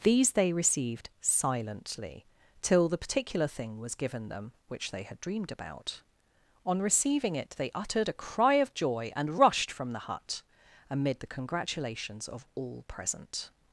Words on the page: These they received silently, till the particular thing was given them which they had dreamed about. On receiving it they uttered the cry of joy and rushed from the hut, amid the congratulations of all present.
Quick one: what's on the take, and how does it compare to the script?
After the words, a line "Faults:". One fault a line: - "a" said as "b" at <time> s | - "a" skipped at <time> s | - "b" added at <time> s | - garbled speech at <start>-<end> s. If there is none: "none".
These they received silently, till the particular thing was given them which they had dreamed about. On receiving it they uttered a cry of joy and rushed from the hut, amid the congratulations of all present.
Faults:
- "the" said as "a" at 8.1 s